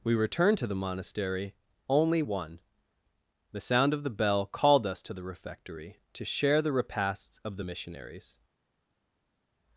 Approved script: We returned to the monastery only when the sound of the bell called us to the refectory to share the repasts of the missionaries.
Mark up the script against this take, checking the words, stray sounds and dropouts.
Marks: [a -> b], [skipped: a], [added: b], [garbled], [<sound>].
We returned to the monastery only [when -> one] the sound of the bell called us to the refectory to share the repasts of the missionaries.